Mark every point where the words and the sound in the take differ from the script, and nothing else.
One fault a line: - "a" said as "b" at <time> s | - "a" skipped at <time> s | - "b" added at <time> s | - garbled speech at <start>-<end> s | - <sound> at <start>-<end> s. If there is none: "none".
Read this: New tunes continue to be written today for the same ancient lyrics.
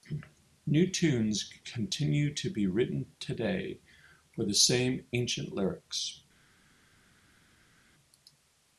none